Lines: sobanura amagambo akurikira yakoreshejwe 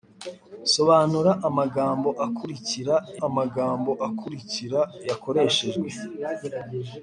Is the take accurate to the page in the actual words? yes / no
no